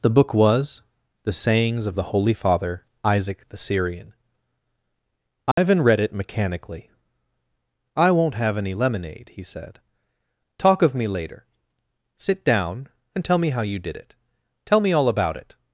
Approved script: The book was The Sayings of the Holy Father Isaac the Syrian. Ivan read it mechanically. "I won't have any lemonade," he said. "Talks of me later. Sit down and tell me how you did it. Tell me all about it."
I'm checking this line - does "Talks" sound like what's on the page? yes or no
no